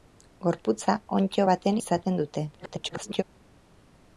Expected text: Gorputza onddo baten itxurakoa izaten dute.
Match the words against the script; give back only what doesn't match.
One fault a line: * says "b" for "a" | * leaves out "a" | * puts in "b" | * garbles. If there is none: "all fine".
* leaves out "itxurakoa"
* garbles